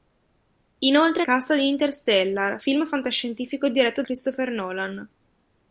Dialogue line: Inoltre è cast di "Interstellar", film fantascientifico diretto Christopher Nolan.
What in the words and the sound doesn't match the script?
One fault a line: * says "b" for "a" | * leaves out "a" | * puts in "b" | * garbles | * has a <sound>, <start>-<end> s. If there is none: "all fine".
all fine